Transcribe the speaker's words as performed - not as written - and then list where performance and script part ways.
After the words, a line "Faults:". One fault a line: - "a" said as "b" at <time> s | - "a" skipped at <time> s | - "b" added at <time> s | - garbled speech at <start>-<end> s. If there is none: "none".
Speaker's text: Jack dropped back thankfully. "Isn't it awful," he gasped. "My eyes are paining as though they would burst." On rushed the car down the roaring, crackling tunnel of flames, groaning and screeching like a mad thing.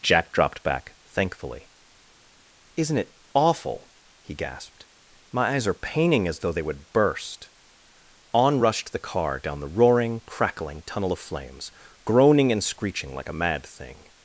Jack dropped back thankfully. "Isn't it awful," he gasped. "My eyes are paining as though they would burst." On rushed the car down the roaring, crackling tunnel of flames, groaning and screeching like a mad thing.
Faults:
none